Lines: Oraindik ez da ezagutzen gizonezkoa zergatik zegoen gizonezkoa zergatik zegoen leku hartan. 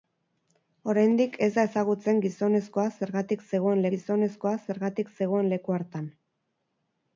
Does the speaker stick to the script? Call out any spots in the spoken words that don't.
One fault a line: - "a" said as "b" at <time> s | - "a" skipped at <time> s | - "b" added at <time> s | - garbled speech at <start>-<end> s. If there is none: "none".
none